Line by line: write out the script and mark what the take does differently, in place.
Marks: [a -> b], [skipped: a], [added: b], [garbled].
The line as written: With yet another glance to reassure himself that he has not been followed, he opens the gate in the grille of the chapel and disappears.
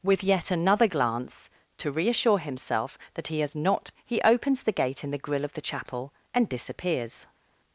With yet another glance to reassure himself that he has not [skipped: been followed,] he opens the gate in the grille of the chapel and disappears.